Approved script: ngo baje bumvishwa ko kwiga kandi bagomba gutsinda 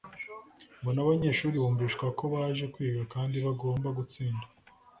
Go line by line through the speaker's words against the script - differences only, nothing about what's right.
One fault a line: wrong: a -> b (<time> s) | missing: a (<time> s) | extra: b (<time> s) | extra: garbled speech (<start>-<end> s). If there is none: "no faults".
wrong: baje -> n'abanyeshuri (0.9 s)
extra: baje (2.3 s)